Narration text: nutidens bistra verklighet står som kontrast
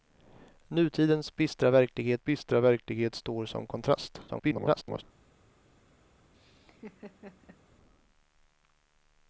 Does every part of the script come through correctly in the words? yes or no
no